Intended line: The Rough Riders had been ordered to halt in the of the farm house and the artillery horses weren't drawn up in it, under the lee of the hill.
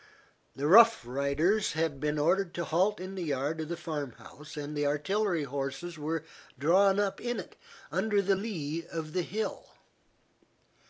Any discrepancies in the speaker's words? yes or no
yes